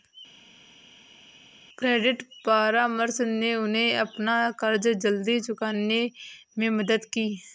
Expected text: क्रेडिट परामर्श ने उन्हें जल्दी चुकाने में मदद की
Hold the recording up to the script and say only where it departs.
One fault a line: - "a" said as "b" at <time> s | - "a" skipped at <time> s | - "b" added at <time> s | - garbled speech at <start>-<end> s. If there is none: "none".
- "अपना कर्ज" added at 4.0 s